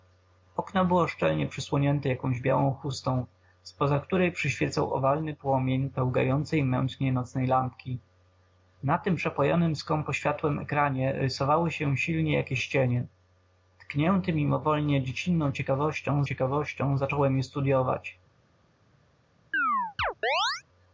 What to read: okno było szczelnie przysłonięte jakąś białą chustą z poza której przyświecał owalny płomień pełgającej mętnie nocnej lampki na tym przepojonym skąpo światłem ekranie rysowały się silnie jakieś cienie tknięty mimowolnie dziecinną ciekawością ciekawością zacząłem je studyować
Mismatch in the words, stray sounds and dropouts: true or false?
true